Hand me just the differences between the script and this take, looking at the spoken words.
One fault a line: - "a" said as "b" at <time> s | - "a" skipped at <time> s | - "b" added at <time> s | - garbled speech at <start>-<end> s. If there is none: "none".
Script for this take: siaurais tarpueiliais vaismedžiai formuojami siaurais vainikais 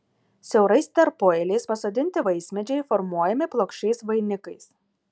- "pasodinti" added at 1.7 s
- "siaurais" said as "plokščiais" at 3.6 s